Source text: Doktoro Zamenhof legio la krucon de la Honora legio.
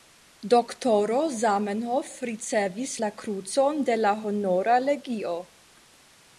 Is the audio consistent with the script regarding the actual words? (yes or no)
no